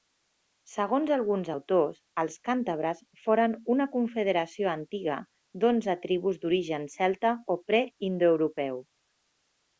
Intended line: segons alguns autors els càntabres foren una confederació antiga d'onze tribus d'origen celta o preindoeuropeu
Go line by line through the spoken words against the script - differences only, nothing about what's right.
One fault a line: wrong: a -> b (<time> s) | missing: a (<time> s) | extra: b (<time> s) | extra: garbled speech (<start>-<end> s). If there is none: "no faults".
no faults